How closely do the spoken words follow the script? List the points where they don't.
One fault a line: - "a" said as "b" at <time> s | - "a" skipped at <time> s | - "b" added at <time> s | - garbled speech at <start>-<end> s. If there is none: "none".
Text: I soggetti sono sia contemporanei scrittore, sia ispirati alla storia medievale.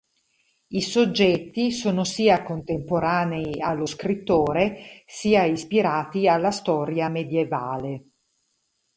- "allo" added at 3.6 s